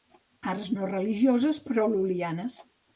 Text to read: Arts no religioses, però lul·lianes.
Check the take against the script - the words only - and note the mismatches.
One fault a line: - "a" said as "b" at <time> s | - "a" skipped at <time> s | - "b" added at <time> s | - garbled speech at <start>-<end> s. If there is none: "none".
none